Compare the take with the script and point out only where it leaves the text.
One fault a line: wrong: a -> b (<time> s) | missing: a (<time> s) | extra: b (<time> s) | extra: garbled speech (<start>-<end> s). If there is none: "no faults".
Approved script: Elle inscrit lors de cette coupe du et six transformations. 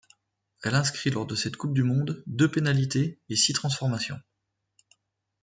extra: monde deux pénalités (1.8 s)